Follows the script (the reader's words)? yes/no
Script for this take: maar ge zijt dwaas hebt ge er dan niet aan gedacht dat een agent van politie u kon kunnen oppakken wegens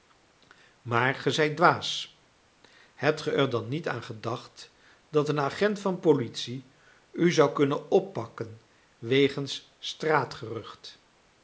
no